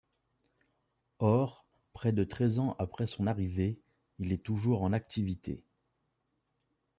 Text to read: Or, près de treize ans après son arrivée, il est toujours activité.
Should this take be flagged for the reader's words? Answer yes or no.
yes